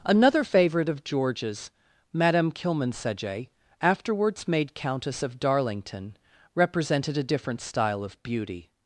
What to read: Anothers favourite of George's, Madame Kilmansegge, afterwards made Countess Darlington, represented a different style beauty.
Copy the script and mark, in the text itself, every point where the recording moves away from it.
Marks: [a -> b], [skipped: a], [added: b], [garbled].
[Anothers -> Another] favourite of George's, Madame Kilmansegge, afterwards made Countess [added: of] Darlington, represented a different style [added: of] beauty.